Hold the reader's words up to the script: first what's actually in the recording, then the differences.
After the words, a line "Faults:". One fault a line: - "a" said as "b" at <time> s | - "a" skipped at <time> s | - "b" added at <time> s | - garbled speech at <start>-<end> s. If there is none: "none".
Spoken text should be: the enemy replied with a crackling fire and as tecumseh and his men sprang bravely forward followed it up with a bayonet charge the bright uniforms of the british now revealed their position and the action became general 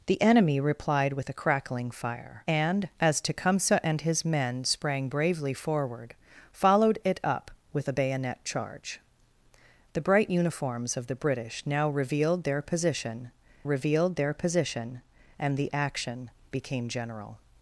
the enemy replied with a crackling fire and as tecumseh and his men sprang bravely forward followed it up with a bayonet charge the bright uniforms of the british now revealed their position revealed their position and the action became general
Faults:
- "revealed their position" added at 13.6 s